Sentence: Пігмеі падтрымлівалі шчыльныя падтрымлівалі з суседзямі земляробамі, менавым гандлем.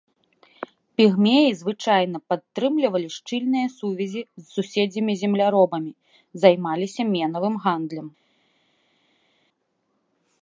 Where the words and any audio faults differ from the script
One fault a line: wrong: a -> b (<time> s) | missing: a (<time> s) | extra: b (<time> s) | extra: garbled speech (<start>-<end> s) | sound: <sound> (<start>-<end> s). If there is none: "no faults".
extra: звычайна (1.6 s)
wrong: падтрымлівалі -> сувязі (3.8 s)
extra: займаліся (6.4 s)